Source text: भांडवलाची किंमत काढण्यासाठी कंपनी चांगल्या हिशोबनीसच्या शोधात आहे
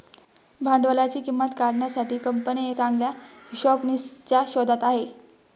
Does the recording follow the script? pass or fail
pass